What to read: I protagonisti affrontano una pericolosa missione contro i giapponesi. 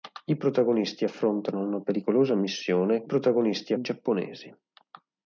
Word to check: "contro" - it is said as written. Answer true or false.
false